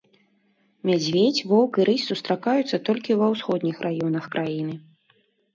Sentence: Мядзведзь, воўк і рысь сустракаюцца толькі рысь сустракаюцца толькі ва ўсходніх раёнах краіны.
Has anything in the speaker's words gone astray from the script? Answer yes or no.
yes